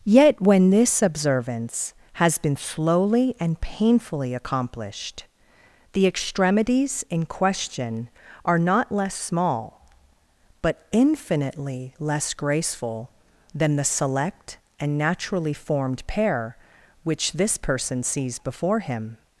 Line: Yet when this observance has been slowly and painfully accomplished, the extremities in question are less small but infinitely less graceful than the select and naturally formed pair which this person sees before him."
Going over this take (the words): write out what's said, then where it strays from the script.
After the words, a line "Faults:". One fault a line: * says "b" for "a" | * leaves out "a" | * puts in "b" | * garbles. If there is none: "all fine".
Yet when this observance has been slowly and painfully accomplished, the extremities in question are not less small but infinitely less graceful than the select and naturally formed pair which this person sees before him."
Faults:
* puts in "not"